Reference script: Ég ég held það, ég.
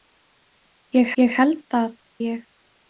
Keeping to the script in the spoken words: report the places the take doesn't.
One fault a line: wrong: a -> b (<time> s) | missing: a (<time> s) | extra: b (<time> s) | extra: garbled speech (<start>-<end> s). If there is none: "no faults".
no faults